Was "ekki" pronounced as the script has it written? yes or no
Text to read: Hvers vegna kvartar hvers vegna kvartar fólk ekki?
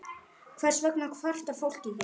yes